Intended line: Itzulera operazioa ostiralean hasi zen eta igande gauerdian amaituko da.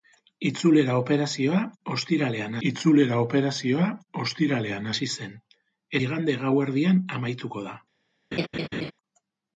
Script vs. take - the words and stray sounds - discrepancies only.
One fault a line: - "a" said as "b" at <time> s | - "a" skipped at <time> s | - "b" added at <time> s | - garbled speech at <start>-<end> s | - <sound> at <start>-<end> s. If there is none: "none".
- "itzulera operazioa ostiralean" added at 2.7 s
- "eta" skipped at 5.4 s
- laugh at 8.3-8.9 s